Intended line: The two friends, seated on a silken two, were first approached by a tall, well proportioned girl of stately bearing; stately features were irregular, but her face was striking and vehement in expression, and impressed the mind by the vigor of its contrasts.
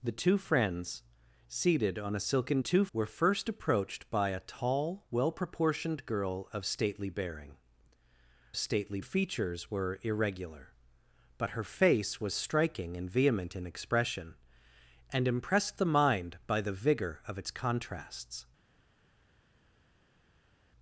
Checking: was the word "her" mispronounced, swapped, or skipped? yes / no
no